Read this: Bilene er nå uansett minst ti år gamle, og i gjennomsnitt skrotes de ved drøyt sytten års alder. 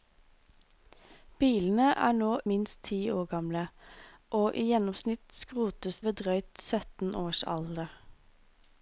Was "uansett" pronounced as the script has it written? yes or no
no